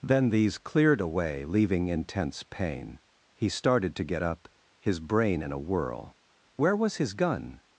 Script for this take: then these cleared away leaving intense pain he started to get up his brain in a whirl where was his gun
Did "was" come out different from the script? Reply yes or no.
no